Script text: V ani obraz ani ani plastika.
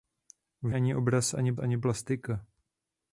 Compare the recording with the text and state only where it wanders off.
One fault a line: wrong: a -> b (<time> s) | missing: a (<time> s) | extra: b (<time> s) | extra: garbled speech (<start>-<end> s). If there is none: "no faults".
no faults